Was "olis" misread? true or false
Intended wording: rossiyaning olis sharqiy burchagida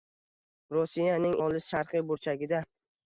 false